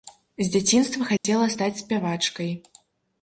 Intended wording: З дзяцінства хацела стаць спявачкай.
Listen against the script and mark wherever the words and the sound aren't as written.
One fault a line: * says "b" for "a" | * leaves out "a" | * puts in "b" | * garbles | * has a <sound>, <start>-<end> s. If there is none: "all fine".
* has a dropout, 1.2-1.2 s